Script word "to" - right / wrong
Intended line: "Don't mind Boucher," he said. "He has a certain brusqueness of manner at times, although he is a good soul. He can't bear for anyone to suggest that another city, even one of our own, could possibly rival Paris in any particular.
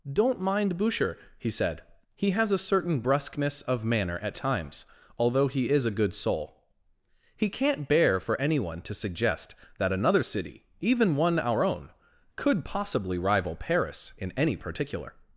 right